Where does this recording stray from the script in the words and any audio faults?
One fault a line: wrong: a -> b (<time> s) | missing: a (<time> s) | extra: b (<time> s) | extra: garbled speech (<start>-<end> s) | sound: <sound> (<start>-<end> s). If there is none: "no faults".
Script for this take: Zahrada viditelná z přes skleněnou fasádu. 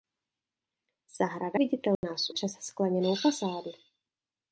sound: dropout (2.0-2.0 s)